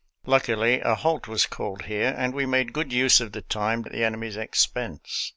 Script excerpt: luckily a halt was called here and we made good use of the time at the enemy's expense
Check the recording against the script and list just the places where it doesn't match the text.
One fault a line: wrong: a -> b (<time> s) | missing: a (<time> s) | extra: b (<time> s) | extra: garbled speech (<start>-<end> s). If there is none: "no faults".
no faults